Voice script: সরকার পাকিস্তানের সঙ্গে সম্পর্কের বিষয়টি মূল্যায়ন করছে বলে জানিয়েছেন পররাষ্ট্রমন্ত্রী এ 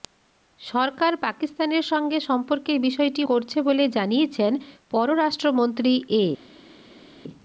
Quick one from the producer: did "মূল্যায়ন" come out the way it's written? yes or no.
no